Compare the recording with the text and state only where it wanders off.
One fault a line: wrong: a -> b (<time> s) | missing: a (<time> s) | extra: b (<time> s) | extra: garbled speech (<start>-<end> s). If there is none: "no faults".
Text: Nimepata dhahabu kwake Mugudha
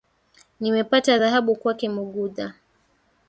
no faults